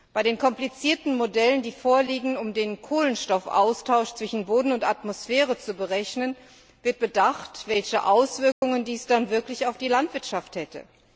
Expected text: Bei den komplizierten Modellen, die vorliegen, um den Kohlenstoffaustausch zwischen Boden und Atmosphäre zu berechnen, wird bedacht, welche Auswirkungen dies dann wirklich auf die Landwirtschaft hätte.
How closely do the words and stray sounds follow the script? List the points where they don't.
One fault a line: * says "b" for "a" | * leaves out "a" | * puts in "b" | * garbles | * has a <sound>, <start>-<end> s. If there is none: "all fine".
* has a dropout, 8.5-8.6 s